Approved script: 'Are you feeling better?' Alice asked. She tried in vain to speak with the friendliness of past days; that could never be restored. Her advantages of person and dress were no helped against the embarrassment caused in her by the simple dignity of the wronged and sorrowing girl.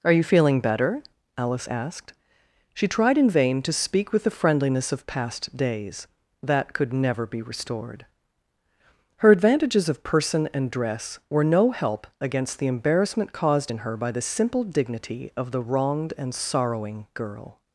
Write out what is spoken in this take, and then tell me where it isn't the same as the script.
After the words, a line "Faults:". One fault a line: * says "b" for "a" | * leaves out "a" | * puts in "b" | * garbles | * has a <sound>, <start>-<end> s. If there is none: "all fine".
'Are you feeling better?' Alice asked. She tried in vain to speak with the friendliness of past days; that could never be restored. Her advantages of person and dress were no help against the embarrassment caused in her by the simple dignity of the wronged and sorrowing girl.
Faults:
* says "help" for "helped"